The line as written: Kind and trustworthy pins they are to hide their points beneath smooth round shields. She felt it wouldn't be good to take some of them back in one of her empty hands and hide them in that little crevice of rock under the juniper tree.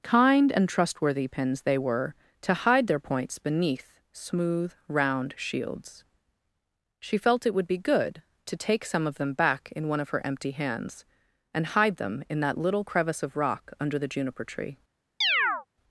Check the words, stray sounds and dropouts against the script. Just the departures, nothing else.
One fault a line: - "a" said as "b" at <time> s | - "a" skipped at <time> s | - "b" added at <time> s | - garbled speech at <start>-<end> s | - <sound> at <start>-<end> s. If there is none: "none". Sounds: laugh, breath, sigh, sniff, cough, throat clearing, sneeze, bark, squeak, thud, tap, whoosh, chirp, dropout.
- "are" said as "were" at 1.8 s
- "wouldn't" said as "would" at 7.5 s
- chirp at 15.2-15.7 s